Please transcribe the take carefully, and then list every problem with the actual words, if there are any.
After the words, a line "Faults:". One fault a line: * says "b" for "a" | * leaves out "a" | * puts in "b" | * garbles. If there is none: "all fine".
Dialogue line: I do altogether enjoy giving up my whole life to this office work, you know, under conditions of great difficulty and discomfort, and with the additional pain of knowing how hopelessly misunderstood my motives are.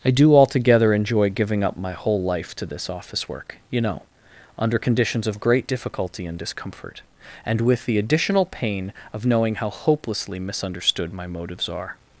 I do altogether enjoy giving up my whole life to this office work, you know, under conditions of great difficulty and discomfort, and with the additional pain of knowing how hopelessly misunderstood my motives are.
Faults:
all fine